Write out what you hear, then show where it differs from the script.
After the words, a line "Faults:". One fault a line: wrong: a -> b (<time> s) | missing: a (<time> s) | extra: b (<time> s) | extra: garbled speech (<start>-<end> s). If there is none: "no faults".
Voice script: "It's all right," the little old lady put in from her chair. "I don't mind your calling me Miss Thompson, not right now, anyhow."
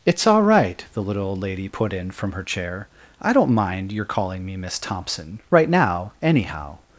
"It's all right," the little old lady put in from her chair. "I don't mind your calling me Miss Thompson, right now, anyhow."
Faults:
missing: not (5.4 s)